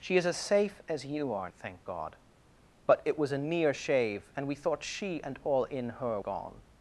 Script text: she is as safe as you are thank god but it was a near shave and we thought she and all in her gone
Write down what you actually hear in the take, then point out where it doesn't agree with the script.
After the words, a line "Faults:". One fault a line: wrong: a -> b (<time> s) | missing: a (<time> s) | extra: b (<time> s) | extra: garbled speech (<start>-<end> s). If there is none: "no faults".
she is as safe as you are thank god but it was a near shave and we thought she and all in her gone
Faults:
no faults